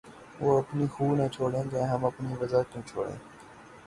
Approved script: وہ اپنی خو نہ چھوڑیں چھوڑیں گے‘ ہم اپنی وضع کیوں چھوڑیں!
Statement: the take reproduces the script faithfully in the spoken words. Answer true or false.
false